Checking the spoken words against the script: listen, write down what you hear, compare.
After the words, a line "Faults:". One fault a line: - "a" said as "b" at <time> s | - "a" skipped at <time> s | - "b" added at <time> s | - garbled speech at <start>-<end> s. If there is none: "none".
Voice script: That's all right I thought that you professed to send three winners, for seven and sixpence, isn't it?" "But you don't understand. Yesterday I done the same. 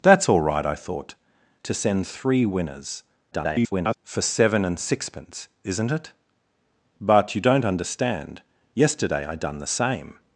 That's all right I thought to send three winners, [garbled] for seven and sixpence, isn't it?" "But you don't understand. Yesterday I done the same.
Faults:
- "that you professed" skipped at 1.1 s
- garbled speech at 3.3-3.9 s